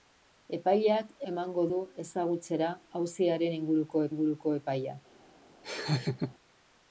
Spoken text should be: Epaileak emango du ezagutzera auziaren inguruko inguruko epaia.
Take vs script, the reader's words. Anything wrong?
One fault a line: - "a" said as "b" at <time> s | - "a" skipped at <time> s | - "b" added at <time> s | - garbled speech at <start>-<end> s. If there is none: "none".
none